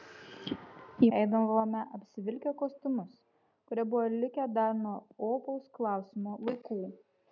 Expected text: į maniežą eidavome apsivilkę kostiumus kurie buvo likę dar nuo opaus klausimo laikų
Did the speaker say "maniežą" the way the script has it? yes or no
no